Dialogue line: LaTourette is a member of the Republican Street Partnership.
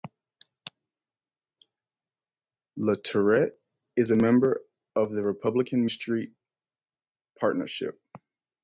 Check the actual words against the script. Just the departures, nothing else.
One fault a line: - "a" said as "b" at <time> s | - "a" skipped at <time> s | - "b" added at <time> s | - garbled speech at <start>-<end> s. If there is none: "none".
none